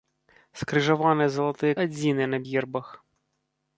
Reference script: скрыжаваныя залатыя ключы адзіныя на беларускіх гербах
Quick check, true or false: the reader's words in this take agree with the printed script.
false